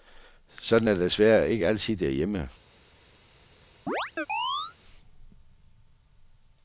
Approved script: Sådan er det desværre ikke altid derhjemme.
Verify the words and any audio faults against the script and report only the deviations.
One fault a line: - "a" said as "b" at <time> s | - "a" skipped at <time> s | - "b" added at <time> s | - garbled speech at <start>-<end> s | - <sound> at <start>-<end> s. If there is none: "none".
- chirp at 3.9-4.8 s